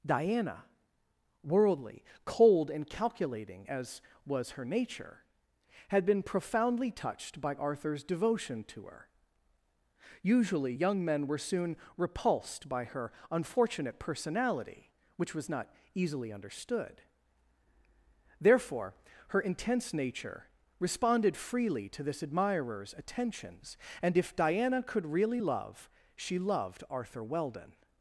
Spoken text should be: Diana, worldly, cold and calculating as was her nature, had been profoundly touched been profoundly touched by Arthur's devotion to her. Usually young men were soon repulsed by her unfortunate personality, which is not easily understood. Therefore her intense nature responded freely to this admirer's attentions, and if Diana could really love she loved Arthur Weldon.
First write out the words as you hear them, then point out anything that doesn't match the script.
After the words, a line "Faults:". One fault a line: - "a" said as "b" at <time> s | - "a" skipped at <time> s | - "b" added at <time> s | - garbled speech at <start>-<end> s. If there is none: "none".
Diana, worldly, cold and calculating as was her nature, had been profoundly touched by Arthur's devotion to her. Usually young men were soon repulsed by her unfortunate personality, which was not easily understood. Therefore her intense nature responded freely to this admirer's attentions, and if Diana could really love she loved Arthur Weldon.
Faults:
- "been profoundly touched" skipped at 7.4 s
- "is" said as "was" at 15.3 s